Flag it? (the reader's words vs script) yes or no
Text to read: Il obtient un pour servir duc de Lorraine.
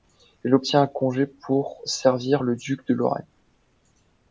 yes